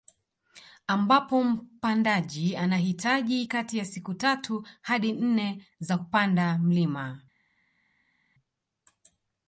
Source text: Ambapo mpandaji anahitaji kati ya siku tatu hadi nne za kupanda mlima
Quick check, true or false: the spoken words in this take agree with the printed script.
true